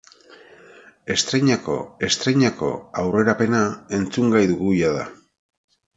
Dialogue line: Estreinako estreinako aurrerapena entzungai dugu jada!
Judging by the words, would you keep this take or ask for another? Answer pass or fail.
pass